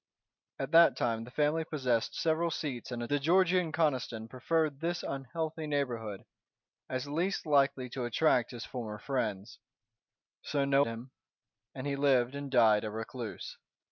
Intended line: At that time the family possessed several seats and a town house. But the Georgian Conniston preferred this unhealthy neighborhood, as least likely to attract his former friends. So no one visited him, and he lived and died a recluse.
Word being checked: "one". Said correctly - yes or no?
no